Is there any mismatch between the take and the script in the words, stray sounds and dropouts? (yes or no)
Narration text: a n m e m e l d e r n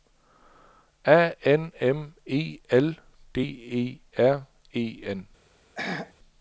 yes